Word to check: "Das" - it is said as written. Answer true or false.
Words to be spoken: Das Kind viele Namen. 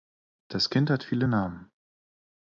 true